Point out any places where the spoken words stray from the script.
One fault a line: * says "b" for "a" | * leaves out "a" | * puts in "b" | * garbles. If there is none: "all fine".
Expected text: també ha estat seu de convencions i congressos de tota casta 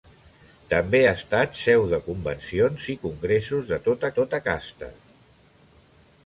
* puts in "tota"